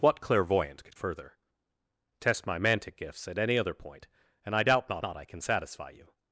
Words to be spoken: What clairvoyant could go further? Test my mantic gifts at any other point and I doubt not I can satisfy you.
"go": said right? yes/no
no